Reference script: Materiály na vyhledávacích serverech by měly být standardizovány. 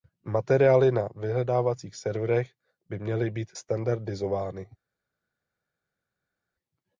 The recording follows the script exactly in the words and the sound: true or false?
true